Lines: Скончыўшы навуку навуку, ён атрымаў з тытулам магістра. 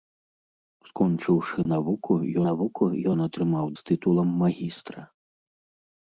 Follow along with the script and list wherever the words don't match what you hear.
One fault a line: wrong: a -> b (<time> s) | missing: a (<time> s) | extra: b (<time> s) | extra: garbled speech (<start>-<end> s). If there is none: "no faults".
no faults